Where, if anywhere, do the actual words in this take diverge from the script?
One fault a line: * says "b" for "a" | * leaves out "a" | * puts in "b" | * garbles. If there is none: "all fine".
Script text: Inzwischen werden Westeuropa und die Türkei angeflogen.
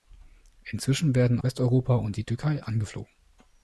all fine